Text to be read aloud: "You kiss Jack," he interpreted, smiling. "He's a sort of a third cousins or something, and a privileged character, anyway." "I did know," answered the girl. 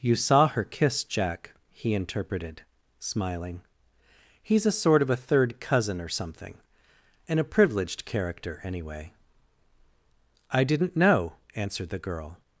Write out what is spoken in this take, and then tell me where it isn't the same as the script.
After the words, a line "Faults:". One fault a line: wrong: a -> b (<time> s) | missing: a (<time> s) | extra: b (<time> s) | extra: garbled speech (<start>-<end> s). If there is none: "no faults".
"You saw her kiss Jack," he interpreted, smiling. "He's a sort of a third cousin or something, and a privileged character, anyway." "I didn't know," answered the girl.
Faults:
extra: saw her (0.1 s)
wrong: cousins -> cousin (5.6 s)
wrong: did -> didn't (10.6 s)